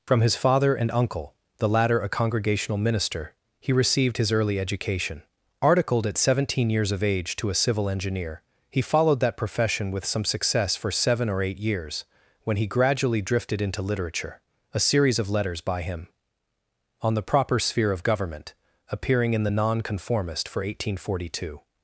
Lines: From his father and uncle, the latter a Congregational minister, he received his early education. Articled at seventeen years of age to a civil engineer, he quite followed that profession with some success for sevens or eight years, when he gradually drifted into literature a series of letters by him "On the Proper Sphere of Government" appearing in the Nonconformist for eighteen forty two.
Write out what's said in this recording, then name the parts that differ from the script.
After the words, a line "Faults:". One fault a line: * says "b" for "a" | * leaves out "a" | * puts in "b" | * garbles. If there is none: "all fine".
From his father and uncle, the latter a Congregational minister, he received his early education. Articled at seventeen years of age to a civil engineer, he followed that profession with some success for seven or eight years, when he gradually drifted into literature a series of letters by him "On the Proper Sphere of Government" appearing in the Nonconformist for eighteen forty two.
Faults:
* leaves out "quite"
* says "seven" for "sevens"